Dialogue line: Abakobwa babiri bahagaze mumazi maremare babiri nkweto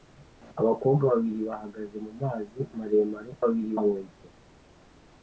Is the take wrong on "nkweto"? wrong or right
right